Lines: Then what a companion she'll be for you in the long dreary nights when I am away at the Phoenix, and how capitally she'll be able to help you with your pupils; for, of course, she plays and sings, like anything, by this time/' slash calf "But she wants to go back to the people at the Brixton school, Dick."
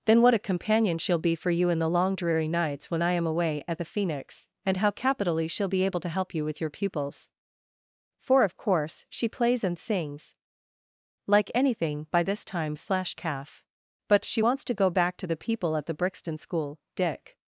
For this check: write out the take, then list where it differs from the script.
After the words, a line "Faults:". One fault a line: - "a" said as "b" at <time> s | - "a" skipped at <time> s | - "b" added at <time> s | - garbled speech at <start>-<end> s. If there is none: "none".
Then what a companion she'll be for you in the long dreary nights when I am away at the Phoenix, and how capitally she'll be able to help you with your pupils; for, of course, she plays and sings, like anything, by this time/' slash calf "But she wants to go back to the people at the Brixton school, Dick."
Faults:
none